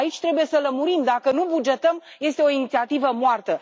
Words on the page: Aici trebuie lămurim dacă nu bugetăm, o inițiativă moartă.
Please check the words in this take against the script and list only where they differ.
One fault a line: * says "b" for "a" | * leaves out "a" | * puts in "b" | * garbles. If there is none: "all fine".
* puts in "să"
* puts in "este"